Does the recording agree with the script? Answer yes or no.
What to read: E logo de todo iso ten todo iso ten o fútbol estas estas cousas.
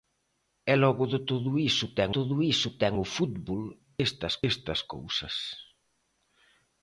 yes